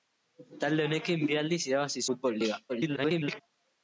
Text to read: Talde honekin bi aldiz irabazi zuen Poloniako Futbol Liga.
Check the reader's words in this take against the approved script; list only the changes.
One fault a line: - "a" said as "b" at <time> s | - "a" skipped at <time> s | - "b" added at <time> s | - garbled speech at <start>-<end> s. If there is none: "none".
- "zuen Poloniako" skipped at 2.0 s
- garbled speech at 2.7-3.4 s